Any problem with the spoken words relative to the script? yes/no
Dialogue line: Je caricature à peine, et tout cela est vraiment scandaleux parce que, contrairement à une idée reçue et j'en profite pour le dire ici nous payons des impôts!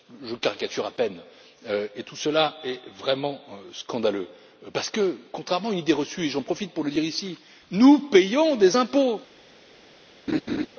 no